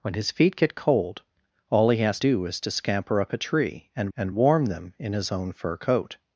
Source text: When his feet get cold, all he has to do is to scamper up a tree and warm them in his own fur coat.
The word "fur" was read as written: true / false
true